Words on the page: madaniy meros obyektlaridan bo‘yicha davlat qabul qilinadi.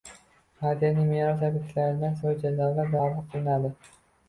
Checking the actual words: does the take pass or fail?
pass